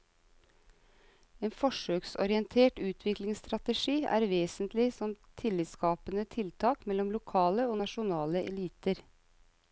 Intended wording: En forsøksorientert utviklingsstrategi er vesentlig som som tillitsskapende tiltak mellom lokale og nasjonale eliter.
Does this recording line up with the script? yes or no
no